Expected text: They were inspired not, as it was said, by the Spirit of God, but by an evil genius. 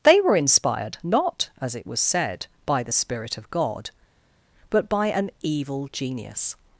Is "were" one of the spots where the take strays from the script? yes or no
no